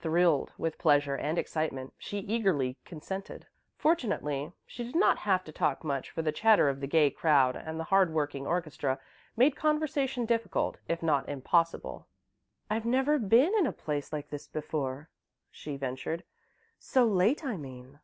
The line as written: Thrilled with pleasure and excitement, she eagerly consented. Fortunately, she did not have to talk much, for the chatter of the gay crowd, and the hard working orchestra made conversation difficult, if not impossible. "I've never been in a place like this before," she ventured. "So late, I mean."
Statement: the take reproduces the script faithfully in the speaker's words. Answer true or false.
true